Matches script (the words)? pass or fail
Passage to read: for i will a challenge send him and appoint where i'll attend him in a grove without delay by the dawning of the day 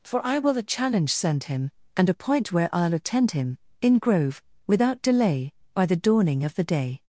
fail